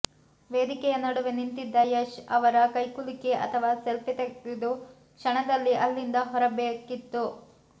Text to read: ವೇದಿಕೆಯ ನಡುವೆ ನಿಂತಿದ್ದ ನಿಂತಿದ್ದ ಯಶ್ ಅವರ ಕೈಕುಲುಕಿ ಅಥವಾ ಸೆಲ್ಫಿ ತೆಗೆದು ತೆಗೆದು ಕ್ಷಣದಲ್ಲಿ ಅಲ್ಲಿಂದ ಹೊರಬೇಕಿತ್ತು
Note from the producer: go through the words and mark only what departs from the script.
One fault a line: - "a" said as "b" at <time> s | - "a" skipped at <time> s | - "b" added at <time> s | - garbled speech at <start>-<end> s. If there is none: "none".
- "ನಿಂತಿದ್ದ" skipped at 1.8 s
- "ತೆಗೆದು" skipped at 4.7 s